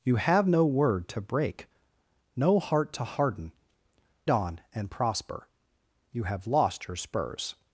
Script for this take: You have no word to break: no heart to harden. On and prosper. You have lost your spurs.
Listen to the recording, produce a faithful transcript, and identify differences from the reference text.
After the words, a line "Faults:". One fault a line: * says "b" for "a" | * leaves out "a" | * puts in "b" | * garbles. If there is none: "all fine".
You have no word to break: no heart to harden. On and prosper. You have lost your spurs.
Faults:
all fine